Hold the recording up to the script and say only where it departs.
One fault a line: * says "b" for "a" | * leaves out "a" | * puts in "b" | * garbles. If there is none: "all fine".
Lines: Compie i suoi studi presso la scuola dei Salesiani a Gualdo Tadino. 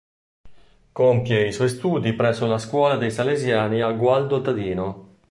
all fine